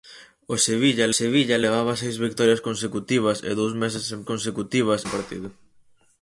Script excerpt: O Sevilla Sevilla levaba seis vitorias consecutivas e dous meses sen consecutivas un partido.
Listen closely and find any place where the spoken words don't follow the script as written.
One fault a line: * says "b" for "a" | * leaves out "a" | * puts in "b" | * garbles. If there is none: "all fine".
all fine